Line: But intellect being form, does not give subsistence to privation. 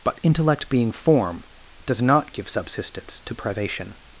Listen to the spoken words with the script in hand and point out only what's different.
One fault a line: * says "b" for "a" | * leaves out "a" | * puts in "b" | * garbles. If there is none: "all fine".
all fine